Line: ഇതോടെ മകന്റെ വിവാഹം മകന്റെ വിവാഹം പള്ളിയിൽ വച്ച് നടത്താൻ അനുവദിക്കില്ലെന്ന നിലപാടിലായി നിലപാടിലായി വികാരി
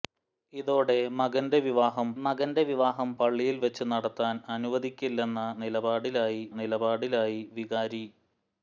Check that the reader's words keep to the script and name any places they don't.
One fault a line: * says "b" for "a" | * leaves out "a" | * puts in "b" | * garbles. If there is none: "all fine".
all fine